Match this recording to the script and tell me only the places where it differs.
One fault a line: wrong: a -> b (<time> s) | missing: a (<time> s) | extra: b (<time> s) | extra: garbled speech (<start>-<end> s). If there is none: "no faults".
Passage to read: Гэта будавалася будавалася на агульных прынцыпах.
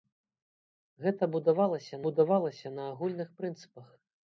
no faults